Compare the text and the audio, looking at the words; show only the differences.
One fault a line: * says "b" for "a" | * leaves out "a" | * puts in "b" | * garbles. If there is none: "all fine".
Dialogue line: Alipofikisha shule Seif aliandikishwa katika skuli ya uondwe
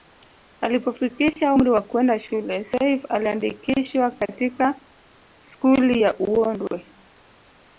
* puts in "umri wa kwenda"